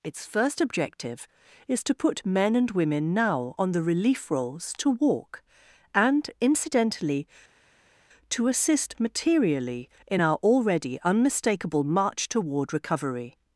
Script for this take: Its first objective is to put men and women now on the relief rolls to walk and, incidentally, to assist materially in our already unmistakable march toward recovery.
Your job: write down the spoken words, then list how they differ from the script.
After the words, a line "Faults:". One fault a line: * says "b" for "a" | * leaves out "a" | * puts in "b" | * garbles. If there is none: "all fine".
Its first objective is to put men and women now on the relief rolls to walk and, incidentally, to assist materially in our already unmistakable march toward recovery.
Faults:
all fine